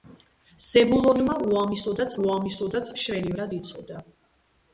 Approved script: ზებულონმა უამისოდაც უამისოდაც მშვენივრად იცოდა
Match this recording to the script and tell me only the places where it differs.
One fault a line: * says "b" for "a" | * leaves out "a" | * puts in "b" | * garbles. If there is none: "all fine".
all fine